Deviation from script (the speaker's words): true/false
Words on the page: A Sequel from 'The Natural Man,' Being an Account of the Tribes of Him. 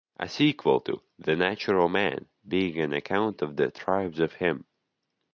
true